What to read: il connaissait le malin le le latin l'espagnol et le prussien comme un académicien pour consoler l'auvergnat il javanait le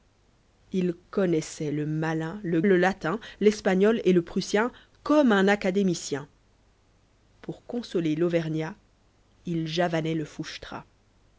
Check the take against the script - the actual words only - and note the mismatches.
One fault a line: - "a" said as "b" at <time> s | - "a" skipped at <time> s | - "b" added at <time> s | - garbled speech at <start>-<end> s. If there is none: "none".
none